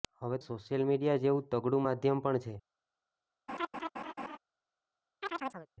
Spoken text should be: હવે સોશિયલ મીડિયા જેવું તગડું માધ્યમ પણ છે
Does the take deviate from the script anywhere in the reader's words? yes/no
no